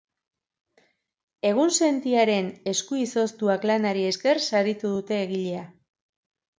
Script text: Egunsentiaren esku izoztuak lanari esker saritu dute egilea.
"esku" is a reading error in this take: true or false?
false